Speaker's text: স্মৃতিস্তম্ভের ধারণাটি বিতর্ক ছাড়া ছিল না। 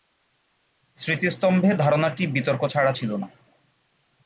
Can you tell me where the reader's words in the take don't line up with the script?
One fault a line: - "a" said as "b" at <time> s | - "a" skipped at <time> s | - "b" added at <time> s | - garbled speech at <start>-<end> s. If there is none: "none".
none